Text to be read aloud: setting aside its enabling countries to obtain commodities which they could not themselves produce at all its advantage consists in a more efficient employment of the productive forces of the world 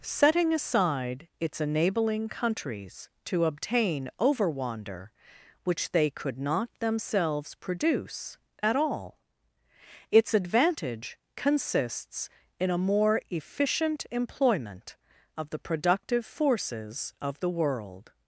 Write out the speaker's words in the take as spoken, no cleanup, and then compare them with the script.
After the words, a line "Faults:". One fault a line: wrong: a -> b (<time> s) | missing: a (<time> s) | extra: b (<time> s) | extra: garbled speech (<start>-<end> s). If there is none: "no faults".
setting aside its enabling countries to obtain overwander which they could not themselves produce at all its advantage consists in a more efficient employment of the productive forces of the world
Faults:
wrong: commodities -> overwander (4.2 s)